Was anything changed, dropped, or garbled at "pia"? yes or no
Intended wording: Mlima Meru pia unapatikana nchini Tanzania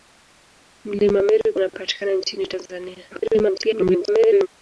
yes